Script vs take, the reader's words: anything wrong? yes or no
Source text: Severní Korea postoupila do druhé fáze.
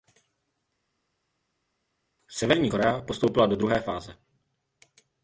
no